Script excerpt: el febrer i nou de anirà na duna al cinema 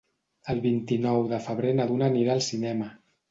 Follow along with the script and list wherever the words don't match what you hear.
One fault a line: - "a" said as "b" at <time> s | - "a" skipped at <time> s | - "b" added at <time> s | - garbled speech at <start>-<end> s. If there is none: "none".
- "febrer" said as "vint" at 0.6 s
- "anirà" said as "febrer" at 1.5 s
- "anirà" added at 2.1 s